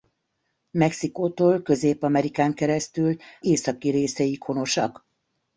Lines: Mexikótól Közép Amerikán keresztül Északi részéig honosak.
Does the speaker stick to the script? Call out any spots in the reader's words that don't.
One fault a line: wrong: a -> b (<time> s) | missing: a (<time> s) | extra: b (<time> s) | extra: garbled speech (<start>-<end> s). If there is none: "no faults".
no faults